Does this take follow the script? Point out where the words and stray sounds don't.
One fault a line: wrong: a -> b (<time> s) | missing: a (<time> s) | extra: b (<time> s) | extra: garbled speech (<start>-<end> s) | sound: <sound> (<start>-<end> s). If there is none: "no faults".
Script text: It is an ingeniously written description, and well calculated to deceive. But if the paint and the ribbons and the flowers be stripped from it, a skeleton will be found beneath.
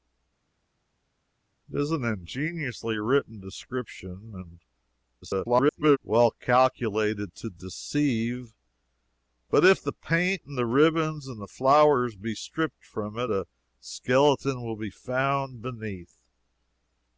extra: garbled speech (5.2-6.0 s)